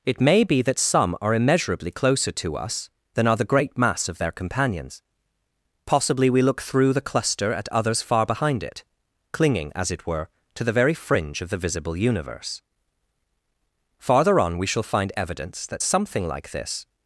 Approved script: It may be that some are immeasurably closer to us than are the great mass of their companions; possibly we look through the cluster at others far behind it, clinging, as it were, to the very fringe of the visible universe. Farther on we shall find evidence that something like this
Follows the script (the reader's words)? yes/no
yes